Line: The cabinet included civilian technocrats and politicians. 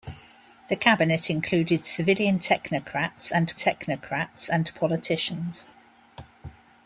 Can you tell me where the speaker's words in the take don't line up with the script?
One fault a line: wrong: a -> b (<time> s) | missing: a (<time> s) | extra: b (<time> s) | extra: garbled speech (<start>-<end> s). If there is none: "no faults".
extra: technocrats and (3.5 s)